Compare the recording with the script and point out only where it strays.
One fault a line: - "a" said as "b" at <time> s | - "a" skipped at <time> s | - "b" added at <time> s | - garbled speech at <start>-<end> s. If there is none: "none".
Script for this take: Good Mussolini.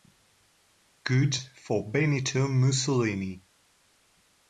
- "for Benito" added at 1.3 s